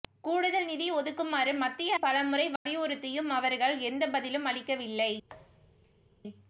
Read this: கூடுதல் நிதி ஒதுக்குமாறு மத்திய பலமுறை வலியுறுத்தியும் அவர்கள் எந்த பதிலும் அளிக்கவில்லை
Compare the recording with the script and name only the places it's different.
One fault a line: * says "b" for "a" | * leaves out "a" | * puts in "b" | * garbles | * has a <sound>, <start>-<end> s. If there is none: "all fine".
* has a dropout, 2.6-2.7 s
* has a thud, 5.3-6.1 s